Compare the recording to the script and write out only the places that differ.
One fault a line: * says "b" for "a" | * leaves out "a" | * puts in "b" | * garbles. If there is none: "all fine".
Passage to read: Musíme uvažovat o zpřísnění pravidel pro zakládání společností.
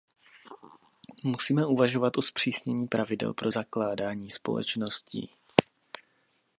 all fine